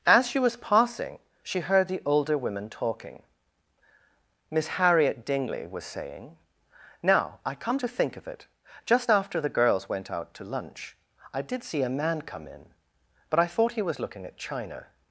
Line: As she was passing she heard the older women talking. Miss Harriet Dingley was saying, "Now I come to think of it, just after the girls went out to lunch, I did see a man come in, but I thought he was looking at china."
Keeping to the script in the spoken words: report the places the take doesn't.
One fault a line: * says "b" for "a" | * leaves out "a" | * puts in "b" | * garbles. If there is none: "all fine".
all fine